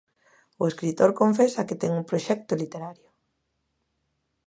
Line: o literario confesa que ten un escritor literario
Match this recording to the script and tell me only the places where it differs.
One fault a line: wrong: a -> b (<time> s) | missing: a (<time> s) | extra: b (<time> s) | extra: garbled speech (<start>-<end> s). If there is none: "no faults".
wrong: literario -> escritor (0.7 s)
wrong: escritor -> proxecto (2.1 s)